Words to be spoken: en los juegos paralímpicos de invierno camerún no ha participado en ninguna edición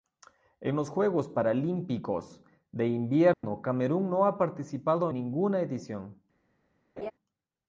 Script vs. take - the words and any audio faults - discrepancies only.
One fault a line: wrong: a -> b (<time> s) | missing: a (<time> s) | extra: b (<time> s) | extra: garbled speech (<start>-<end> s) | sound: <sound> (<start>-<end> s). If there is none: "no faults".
sound: dropout (3.3-3.4 s)
missing: en (5.1 s)
sound: laugh (7.0-7.1 s)